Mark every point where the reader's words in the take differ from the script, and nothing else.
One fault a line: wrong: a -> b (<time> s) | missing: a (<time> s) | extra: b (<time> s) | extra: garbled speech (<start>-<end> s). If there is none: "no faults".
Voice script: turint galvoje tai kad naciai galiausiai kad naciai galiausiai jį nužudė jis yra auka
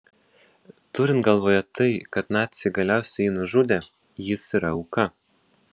missing: kad naciai galiausiai (3.3 s)